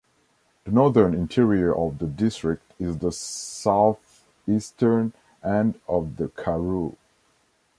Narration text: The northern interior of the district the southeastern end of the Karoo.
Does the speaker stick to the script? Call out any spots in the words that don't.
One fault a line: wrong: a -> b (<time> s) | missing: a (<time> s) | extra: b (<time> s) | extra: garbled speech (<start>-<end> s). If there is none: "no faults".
extra: is (2.8 s)